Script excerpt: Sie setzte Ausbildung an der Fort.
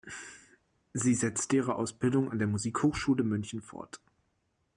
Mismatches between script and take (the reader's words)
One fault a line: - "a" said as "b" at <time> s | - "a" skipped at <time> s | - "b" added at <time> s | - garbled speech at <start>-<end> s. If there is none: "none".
- "ihre" added at 1.6 s
- "Musikhochschule München" added at 2.5 s